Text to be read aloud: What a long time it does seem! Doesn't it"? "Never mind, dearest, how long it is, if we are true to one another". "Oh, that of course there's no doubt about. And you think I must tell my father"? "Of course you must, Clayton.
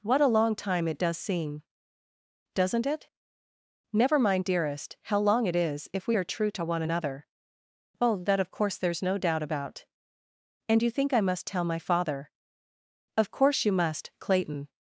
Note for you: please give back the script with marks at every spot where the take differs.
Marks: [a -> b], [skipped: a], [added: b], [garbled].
What a long time it does seem! Doesn't it"? "Never mind, dearest, how long it is, if we are true to one another". "Oh, that of course there's no doubt about. And you think I must tell my father"? "Of course you must, Clayton.